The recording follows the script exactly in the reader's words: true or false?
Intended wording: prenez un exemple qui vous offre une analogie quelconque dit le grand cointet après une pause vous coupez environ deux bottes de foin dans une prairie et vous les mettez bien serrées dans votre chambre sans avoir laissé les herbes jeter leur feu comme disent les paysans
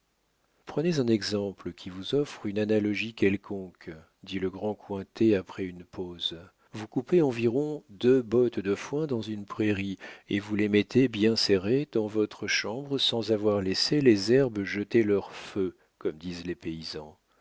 true